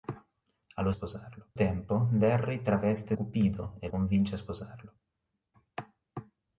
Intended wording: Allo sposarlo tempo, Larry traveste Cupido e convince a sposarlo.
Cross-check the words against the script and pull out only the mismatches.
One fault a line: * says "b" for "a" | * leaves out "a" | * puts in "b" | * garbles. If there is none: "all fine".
all fine